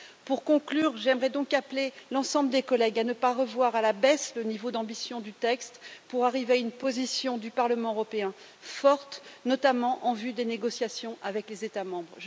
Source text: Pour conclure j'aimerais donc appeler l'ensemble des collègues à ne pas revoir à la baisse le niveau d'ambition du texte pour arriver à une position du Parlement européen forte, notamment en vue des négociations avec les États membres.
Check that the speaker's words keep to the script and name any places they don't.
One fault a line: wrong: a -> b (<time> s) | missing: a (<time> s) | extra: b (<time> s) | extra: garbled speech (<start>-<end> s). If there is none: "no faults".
no faults